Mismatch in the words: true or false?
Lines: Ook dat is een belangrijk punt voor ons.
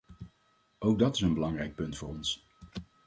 false